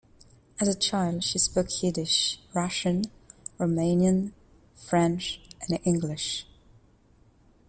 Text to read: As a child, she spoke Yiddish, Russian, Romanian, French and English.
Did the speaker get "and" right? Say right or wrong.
right